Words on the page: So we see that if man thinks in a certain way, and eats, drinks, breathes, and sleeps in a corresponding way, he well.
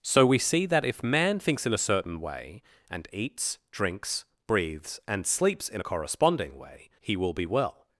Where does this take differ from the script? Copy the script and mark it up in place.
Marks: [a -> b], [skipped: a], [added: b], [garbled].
So we see that if man thinks in a certain way, and eats, drinks, breathes, and sleeps in a corresponding way, he [added: will be] well.